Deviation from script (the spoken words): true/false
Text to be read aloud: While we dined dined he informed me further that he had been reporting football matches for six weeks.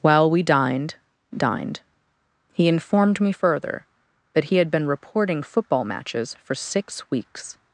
false